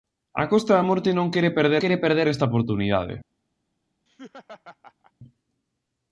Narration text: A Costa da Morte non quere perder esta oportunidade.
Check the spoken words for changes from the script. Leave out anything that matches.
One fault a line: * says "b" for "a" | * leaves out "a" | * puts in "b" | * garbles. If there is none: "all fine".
* puts in "quere perder"